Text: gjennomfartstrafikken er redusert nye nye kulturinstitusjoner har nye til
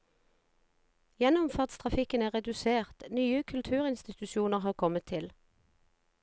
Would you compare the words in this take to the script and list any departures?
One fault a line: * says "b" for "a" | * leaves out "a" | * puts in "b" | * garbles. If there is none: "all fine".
* leaves out "nye"
* says "kommet" for "nye"